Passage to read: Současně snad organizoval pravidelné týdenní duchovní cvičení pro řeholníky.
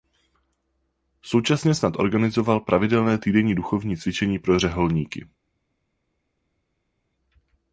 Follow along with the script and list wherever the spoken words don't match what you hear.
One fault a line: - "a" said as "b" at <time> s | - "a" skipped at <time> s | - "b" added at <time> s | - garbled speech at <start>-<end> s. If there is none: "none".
none